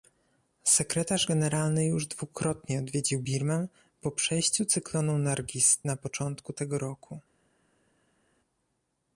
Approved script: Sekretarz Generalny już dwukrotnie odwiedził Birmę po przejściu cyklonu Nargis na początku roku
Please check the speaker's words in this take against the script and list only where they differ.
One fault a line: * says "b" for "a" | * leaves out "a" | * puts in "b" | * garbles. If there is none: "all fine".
* puts in "tego"